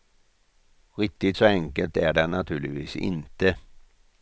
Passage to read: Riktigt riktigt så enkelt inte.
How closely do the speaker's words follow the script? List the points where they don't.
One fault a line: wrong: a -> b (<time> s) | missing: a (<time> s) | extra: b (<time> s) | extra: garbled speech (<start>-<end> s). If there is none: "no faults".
missing: riktigt (1.4 s)
extra: är det naturligtvis (2.0 s)